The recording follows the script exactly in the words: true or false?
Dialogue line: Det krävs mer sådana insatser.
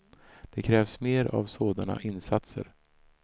false